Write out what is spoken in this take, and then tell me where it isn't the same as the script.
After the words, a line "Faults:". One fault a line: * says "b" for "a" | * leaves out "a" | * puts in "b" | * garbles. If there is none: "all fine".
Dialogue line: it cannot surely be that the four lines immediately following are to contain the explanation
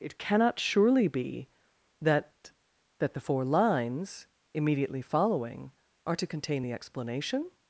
it cannot surely be that that the four lines immediately following are to contain the explanation
Faults:
* puts in "that"